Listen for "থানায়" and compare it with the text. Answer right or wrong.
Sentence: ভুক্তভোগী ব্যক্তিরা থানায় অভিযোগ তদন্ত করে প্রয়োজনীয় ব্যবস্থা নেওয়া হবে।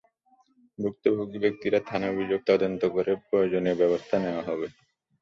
right